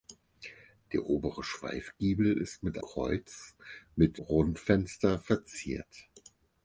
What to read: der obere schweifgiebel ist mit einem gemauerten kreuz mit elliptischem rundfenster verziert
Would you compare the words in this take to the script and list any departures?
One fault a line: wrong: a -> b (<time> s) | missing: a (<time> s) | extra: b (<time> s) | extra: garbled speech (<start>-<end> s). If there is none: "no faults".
missing: einem gemauerten (2.8 s)
missing: elliptischem (4.2 s)